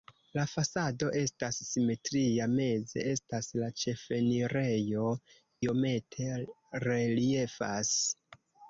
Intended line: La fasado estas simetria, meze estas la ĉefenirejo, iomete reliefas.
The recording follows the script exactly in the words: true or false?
true